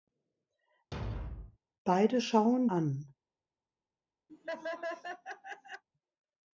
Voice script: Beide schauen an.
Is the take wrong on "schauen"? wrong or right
right